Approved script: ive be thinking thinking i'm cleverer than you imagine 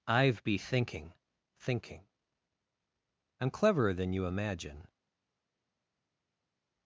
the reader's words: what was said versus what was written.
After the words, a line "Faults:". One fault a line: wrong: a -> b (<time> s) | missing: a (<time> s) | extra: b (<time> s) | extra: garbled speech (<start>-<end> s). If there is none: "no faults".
ive be thinking thinking i'm cleverer than you imagine
Faults:
no faults